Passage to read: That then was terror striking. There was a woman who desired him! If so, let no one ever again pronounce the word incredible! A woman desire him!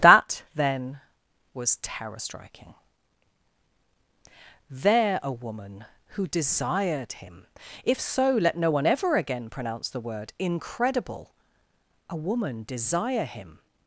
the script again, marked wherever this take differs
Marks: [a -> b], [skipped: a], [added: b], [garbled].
That then was terror striking. There [skipped: was] a woman who desired him! If so, let no one ever again pronounce the word incredible! A woman desire him!